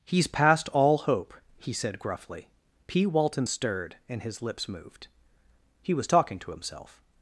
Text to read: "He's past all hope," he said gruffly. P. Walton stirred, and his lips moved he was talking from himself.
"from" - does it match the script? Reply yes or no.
no